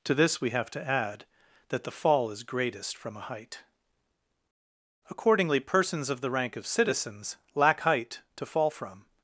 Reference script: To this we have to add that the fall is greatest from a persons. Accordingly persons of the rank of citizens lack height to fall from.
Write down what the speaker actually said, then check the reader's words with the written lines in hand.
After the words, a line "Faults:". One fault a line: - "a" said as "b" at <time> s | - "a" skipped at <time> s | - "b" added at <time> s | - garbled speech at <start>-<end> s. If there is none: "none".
To this we have to add that the fall is greatest from a height. Accordingly persons of the rank of citizens lack height to fall from.
Faults:
- "persons" said as "height" at 3.3 s